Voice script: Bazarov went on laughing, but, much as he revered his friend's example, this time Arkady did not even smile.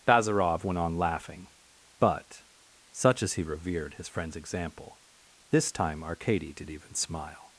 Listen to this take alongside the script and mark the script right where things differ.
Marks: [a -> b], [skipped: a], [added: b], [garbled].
Bazarov went on laughing, but, [much -> such] as he revered his friend's example, this time Arkady did [skipped: not] even smile.